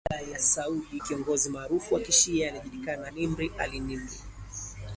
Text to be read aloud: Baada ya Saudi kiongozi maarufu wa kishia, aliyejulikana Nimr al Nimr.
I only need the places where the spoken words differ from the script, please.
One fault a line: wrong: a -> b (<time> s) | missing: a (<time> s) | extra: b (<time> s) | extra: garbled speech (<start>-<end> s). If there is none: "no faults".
no faults